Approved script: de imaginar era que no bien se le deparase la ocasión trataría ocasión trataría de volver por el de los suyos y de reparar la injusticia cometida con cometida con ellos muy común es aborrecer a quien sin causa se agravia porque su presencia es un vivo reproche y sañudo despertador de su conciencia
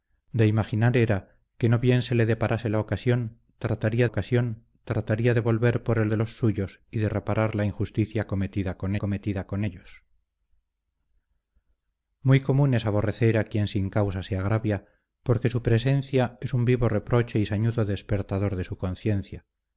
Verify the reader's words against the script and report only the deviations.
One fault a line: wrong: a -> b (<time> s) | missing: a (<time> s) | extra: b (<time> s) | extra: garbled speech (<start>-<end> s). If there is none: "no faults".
no faults